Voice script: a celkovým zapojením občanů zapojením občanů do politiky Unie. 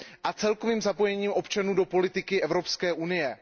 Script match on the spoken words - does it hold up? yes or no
no